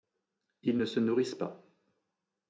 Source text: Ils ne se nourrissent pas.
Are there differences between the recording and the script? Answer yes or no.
no